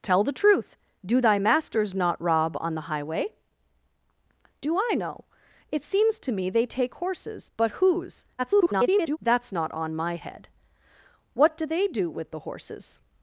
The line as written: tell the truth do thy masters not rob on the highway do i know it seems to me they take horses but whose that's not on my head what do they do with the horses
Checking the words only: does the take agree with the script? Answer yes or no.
no